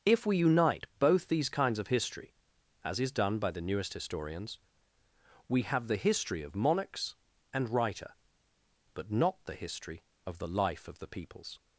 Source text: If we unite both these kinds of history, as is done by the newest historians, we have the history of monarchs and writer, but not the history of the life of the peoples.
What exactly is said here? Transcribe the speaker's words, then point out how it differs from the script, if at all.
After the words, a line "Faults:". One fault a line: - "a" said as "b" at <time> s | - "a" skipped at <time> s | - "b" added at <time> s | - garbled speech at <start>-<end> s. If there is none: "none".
If we unite both these kinds of history, as is done by the newest historians, we have the history of monarchs and writer, but not the history of the life of the peoples.
Faults:
none